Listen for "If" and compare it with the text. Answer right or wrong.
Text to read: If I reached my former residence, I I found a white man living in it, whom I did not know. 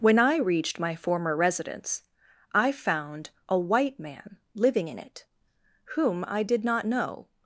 wrong